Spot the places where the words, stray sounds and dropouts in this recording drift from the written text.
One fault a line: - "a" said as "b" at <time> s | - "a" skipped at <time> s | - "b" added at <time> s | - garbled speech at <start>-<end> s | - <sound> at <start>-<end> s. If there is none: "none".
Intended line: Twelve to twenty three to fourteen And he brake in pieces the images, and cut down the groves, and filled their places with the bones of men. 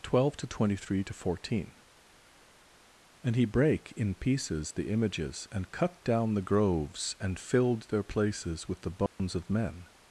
- dropout at 9.1-9.2 s